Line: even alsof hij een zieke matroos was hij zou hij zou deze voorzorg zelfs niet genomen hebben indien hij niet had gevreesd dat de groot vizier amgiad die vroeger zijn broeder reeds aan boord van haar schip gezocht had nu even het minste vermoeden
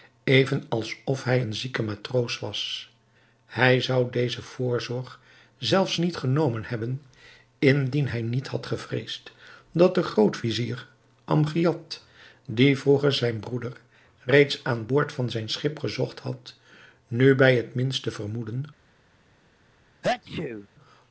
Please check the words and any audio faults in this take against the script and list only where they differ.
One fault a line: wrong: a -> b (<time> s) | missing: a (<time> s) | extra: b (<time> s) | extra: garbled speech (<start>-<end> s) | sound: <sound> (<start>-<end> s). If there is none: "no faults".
missing: hij zou (4.1 s)
wrong: haar -> zijn (15.3 s)
wrong: even -> bij (17.3 s)
sound: sneeze (20.0-20.7 s)